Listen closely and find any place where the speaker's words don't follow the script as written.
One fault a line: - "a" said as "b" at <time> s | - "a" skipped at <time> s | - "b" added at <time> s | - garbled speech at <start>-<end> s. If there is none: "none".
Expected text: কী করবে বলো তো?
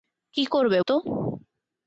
- "বলো" skipped at 0.8 s